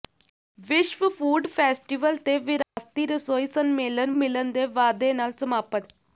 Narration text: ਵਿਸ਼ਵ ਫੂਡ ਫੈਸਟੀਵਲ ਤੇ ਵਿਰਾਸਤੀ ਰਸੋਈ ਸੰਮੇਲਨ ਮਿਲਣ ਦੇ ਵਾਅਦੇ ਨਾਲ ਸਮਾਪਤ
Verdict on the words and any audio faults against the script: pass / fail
fail